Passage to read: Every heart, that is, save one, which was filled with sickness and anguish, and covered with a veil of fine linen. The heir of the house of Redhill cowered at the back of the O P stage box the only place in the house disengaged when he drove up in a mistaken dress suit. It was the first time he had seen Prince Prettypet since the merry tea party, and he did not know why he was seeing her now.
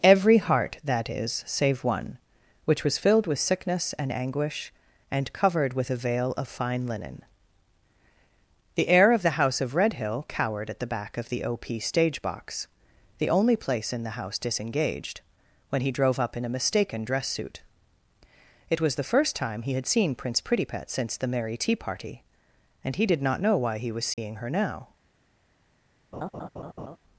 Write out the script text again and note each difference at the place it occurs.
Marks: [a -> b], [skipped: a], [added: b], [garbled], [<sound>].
Every heart, that is, save one, which was filled with sickness and anguish, and covered with a veil of fine linen. The heir of the house of Redhill cowered at the back of the O P stage box the only place in the house disengaged when he drove up in a mistaken dress suit. It was the first time he had seen Prince Prettypet since the merry tea party, and he did not know why he was seeing [dropout] her now. [laugh]